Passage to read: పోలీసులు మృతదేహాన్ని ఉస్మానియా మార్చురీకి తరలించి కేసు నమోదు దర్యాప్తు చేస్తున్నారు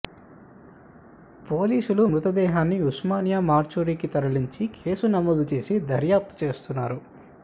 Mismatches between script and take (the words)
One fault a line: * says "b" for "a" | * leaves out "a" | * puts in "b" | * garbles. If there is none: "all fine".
* puts in "చేసి"